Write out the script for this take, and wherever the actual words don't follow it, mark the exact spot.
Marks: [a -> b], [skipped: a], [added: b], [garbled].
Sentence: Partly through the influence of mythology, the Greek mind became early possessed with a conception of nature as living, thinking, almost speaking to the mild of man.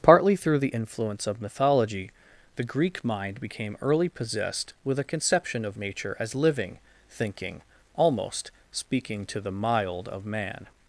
Partly through the influence of mythology, the Greek mind became early possessed with a conception of nature as living, thinking, almost speaking to the mild of man.